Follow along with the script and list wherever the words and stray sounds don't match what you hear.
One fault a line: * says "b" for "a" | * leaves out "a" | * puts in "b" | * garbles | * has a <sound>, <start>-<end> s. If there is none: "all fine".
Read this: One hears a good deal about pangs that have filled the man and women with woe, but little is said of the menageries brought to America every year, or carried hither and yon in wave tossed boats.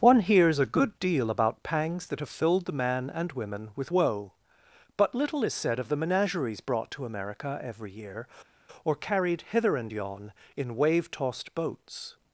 all fine